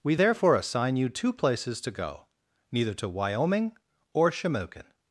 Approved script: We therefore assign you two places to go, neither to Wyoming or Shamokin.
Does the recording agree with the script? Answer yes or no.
yes